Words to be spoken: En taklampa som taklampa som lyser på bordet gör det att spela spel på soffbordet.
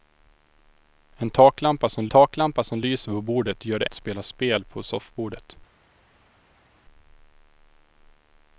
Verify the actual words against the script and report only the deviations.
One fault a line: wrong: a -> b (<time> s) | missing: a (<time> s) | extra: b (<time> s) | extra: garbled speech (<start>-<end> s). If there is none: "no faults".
no faults